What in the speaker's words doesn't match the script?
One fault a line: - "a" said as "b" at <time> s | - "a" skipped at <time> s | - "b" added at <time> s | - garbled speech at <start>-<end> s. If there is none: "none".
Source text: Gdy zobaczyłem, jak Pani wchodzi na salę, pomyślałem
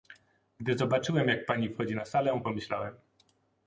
none